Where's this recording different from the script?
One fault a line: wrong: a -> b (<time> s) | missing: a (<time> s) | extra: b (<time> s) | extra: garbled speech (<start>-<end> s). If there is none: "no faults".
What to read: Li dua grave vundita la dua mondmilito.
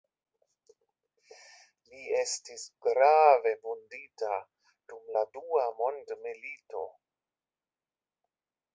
wrong: dua -> estis (2.2 s)
extra: dum (4.9 s)